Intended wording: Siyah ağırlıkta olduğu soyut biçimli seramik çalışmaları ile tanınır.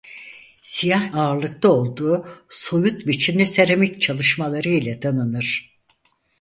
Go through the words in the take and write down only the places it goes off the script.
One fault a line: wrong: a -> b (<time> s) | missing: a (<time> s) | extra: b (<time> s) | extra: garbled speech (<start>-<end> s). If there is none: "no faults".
no faults